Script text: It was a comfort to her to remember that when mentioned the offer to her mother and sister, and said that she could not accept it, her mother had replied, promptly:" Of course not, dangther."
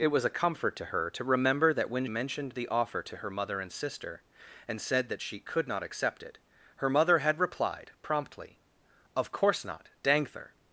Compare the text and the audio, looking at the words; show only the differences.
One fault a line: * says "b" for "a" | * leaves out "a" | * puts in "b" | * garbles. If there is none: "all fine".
all fine